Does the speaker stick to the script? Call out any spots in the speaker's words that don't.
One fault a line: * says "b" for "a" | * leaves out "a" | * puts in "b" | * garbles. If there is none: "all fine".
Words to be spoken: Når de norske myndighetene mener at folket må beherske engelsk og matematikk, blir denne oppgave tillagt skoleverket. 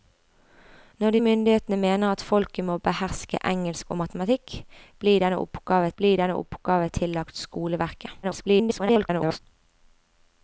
* leaves out "norske"
* puts in "blir denne oppgave"
* garbles